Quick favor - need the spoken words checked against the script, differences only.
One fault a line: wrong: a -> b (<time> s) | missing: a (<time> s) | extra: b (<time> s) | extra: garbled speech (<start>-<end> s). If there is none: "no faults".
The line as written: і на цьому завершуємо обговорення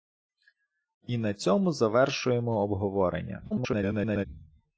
extra: garbled speech (3.5-4.3 s)